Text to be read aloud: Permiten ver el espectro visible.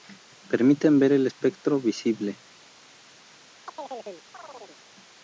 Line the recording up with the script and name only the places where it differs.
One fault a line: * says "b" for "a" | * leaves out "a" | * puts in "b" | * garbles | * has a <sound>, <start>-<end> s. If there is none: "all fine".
* has a chirp, 3.7-4.8 s